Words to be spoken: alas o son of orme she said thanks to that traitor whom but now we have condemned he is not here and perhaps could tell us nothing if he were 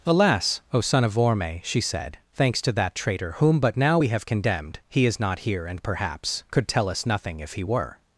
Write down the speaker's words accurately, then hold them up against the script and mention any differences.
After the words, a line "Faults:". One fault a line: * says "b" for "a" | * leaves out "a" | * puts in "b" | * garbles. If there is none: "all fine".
alas o son of orme she said thanks to that traitor whom but now we have condemned he is not here and perhaps could tell us nothing if he were
Faults:
all fine